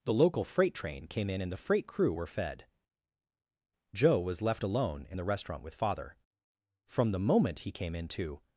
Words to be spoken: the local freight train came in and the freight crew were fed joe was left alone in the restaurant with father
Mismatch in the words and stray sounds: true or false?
true